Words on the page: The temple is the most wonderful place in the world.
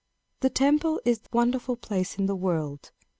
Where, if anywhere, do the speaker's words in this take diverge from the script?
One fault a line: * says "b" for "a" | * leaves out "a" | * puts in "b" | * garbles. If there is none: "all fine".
* leaves out "most"